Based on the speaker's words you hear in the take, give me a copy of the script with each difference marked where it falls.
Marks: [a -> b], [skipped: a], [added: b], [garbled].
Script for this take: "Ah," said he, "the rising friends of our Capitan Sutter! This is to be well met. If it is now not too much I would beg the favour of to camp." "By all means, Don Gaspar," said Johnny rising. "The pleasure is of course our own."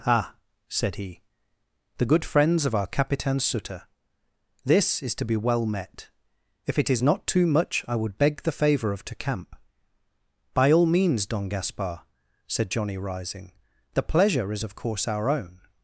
"Ah," said he, "the [rising -> good] friends of our Capitan Sutter! This is to be well met. If it is [skipped: now] not too much I would beg the favour of to camp." "By all means, Don Gaspar," said Johnny rising. "The pleasure is of course our own."